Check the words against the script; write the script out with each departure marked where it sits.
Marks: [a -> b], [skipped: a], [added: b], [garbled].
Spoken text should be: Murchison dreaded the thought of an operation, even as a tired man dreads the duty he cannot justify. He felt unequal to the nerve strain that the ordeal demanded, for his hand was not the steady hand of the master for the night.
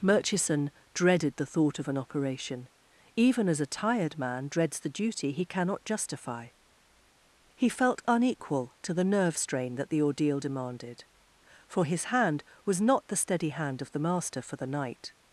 Murchison dreaded the thought of an operation, even as a tired man dreads the duty he cannot justify. He felt unequal to the nerve strain that the ordeal demanded, for his hand was not the steady hand of the master for the night.